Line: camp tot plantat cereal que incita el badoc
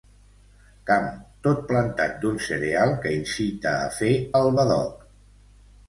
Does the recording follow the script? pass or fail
fail